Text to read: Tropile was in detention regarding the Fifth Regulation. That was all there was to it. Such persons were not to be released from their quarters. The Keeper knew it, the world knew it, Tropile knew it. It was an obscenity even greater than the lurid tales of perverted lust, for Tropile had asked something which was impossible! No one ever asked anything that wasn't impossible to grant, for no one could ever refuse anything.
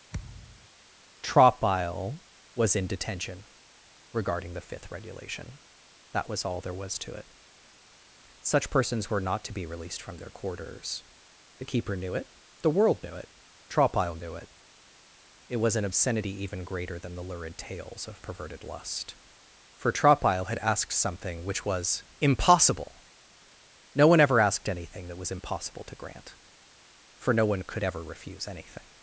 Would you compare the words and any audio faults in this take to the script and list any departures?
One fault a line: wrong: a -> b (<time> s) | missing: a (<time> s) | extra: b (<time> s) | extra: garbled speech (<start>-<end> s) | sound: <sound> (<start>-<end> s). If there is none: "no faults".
sound: thud (0.1-0.7 s)
wrong: wasn't -> was (25.2 s)